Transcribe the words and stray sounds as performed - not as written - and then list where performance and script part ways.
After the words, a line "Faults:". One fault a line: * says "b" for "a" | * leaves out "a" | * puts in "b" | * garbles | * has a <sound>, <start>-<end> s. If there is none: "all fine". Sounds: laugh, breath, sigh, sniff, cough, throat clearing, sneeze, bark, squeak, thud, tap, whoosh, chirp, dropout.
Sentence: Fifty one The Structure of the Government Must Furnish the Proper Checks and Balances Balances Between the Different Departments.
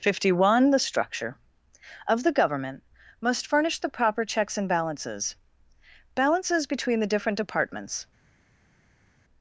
Fifty one The Structure of the Government Must Furnish the Proper Checks and Balances Balances Between the Different Departments.
Faults:
all fine